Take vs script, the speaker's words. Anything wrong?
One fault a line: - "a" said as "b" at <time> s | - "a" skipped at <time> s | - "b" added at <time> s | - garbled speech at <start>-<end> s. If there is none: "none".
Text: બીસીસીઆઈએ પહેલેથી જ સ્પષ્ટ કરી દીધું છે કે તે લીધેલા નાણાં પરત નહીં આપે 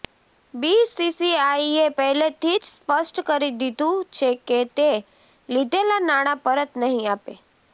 none